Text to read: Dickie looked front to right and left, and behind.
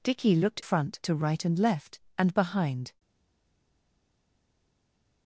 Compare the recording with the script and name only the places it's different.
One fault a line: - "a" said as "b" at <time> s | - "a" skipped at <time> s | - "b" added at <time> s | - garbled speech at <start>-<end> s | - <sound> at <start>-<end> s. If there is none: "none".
none